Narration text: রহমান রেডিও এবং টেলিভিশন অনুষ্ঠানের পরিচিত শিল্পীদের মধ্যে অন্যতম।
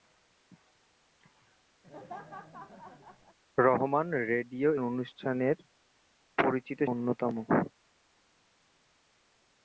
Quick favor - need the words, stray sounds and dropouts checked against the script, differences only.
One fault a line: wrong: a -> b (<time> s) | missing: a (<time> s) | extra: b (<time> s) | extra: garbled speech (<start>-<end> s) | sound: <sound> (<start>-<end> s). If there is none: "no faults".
sound: laugh (1.8-3.4 s)
missing: এবং টেলিভিশন (4.7 s)
missing: শিল্পীদের মধ্যে (6.8 s)